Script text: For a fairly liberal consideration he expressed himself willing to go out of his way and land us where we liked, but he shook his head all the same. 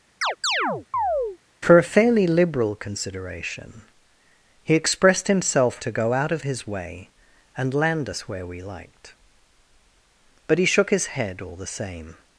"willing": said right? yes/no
no